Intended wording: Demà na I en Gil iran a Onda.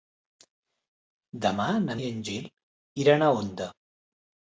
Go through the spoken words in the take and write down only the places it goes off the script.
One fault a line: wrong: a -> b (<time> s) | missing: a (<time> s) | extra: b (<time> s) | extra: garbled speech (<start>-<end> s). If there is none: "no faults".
no faults